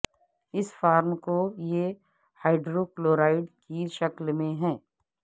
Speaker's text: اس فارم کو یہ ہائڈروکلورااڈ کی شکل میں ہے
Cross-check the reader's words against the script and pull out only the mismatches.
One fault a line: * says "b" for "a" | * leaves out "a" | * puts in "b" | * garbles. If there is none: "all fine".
all fine